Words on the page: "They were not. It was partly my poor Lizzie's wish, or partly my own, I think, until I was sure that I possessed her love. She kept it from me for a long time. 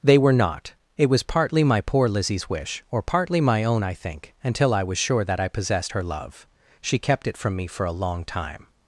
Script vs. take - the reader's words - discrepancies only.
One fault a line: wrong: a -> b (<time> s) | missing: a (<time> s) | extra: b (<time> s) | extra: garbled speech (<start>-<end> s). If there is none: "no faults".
no faults